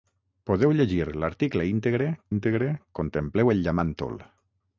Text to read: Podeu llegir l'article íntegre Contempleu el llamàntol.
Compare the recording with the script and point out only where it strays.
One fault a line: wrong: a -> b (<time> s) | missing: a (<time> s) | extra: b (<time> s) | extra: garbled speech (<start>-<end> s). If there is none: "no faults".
extra: íntegre (2.3 s)